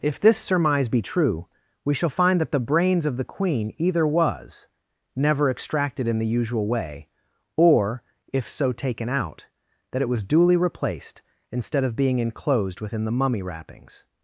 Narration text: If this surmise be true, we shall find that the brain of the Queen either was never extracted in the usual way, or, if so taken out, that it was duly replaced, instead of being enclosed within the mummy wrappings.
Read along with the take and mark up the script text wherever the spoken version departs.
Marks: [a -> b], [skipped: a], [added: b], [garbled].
If this surmise be true, we shall find that the [brain -> brains] of the Queen either was never extracted in the usual way, or, if so taken out, that it was duly replaced, instead of being enclosed within the mummy wrappings.